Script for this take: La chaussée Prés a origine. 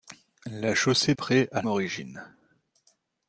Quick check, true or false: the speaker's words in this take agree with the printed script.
true